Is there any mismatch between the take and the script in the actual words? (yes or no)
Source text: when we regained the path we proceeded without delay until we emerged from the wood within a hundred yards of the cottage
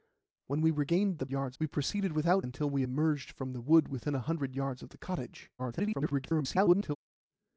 yes